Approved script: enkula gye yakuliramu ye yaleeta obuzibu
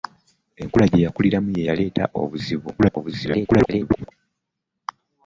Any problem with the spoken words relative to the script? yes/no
yes